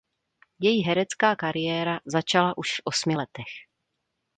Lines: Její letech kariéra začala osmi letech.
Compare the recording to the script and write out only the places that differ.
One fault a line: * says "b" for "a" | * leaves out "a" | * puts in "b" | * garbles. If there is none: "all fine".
* says "herecká" for "letech"
* puts in "už v"